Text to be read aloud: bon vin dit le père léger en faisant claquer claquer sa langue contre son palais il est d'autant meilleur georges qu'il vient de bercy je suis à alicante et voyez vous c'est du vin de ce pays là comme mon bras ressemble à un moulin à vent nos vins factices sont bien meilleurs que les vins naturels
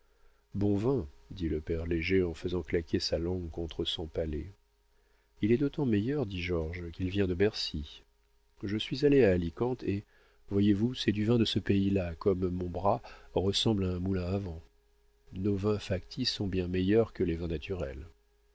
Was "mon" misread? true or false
false